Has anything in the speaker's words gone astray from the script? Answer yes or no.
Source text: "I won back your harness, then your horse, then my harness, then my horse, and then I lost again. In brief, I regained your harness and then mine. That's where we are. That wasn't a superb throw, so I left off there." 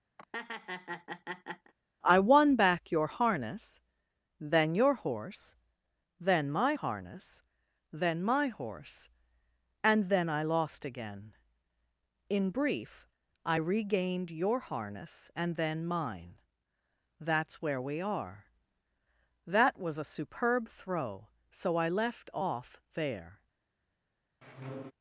yes